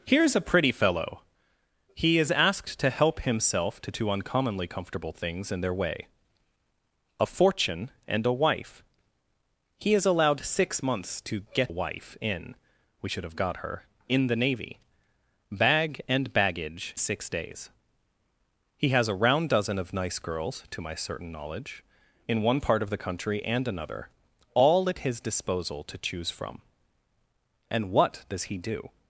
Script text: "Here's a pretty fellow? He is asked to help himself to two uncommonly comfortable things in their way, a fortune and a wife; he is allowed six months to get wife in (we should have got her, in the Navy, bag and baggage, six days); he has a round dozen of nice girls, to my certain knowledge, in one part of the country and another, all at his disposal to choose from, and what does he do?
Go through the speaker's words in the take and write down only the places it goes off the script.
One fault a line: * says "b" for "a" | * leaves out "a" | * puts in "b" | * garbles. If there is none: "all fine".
all fine